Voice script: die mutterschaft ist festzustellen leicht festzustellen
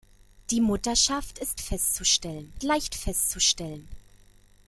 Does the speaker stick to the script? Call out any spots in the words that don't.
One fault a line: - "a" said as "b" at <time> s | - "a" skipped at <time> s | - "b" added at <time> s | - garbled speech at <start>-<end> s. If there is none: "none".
none